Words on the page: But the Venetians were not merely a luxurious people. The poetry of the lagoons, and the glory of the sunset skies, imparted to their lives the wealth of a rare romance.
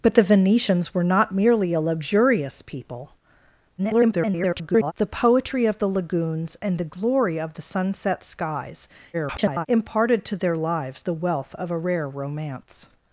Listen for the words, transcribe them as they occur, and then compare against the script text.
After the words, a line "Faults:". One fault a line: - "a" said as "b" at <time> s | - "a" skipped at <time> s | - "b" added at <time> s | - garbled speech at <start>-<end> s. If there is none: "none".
But the Venetians were not merely a luxurious people. [garbled] The poetry of the lagoons, and the glory of the sunset skies, [garbled] imparted to their lives the wealth of a rare romance.
Faults:
- garbled speech at 3.8-4.9 s
- garbled speech at 9.1-9.7 s